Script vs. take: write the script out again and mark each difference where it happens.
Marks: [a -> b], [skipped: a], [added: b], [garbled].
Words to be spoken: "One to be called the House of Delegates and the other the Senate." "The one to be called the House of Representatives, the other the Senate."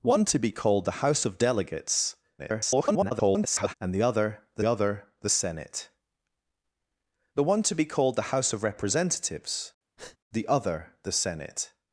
"One to be called the House of Delegates [garbled] and the other the [added: other the] Senate." "The one to be called the House of Representatives, the other the Senate."